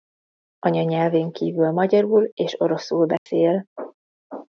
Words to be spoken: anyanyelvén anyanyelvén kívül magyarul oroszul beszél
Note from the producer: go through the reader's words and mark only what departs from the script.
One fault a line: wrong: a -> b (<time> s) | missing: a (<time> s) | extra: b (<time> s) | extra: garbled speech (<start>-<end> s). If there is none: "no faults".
missing: anyanyelvén (1.3 s)
extra: és (2.4 s)